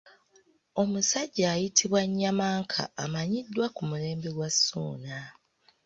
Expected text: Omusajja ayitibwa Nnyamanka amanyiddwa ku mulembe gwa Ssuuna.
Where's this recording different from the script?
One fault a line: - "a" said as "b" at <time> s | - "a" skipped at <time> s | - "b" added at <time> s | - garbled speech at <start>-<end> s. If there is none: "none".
none